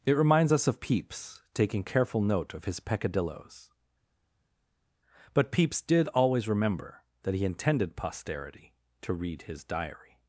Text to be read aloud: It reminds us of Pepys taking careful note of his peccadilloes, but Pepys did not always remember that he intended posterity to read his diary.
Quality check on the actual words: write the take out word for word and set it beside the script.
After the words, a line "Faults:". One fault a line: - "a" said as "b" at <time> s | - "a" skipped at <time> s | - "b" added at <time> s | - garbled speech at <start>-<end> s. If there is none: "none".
It reminds us of Pepys taking careful note of his peccadilloes, but Pepys did always remember that he intended posterity to read his diary.
Faults:
- "not" skipped at 6.1 s